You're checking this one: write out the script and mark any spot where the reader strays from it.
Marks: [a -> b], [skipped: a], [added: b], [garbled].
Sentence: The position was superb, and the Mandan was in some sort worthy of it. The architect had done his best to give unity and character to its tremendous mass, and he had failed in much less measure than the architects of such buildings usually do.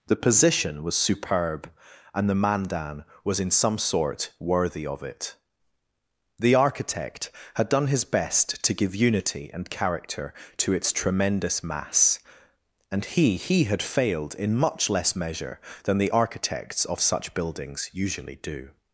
The position was superb, and the Mandan was in some sort worthy of it. The architect had done his best to give unity and character to its tremendous mass, and he [added: he] had failed in much less measure than the architects of such buildings usually do.